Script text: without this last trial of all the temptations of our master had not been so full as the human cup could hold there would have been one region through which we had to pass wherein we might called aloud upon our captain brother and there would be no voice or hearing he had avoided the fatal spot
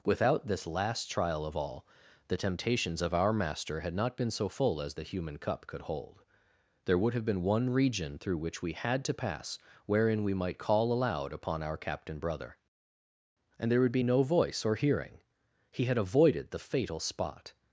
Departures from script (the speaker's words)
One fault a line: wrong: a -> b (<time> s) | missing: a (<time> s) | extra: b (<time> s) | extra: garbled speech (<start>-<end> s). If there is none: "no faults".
wrong: called -> call (10.6 s)